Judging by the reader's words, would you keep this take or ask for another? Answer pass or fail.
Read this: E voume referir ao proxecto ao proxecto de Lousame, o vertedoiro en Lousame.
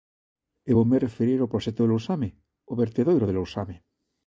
fail